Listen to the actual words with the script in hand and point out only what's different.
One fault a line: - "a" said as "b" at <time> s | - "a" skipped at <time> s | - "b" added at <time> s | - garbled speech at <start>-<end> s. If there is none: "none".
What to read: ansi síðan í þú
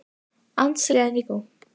none